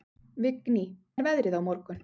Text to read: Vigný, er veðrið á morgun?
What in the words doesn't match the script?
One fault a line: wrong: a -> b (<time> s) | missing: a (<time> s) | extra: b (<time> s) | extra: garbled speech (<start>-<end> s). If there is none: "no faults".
no faults